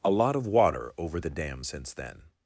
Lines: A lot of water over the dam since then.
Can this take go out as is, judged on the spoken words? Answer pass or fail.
pass